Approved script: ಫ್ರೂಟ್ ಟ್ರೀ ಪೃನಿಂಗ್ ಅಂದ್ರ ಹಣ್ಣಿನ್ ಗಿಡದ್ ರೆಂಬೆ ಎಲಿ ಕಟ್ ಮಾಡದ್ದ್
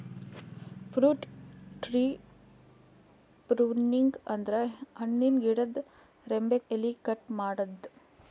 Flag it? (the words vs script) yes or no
no